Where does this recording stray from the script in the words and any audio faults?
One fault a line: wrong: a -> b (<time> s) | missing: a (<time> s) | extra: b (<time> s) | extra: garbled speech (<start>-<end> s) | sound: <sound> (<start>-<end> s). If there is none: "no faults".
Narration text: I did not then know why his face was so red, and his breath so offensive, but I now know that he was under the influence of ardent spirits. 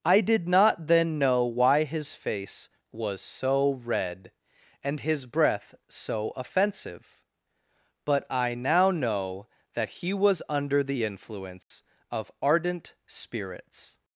sound: dropout (11.6-11.7 s)